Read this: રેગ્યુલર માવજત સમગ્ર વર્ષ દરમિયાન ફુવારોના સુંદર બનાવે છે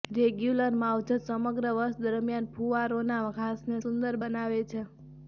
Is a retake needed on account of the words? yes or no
yes